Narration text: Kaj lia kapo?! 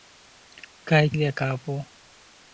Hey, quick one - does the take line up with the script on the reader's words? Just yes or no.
yes